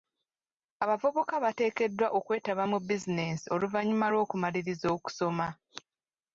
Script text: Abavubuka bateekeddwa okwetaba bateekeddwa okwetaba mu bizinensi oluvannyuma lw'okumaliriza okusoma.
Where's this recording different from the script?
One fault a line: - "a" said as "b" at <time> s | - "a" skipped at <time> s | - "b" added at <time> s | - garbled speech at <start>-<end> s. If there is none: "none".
- "bateekeddwa okwetaba" skipped at 2.6 s